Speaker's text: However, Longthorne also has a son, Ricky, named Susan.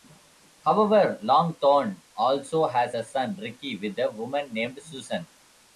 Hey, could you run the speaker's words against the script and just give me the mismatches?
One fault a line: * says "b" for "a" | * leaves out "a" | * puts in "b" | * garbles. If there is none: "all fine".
* puts in "with a woman"